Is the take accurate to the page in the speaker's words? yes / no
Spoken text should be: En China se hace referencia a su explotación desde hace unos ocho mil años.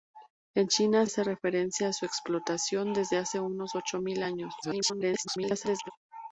no